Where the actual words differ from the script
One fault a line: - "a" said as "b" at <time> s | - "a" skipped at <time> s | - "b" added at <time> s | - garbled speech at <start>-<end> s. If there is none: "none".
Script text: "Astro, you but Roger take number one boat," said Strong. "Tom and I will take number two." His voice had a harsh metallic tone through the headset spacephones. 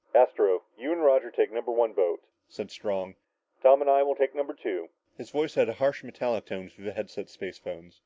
- "but" said as "and" at 0.9 s